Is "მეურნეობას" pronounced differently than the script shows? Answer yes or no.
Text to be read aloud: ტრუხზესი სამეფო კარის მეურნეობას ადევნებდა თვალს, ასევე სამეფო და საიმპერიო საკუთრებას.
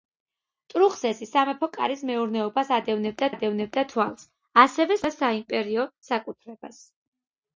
no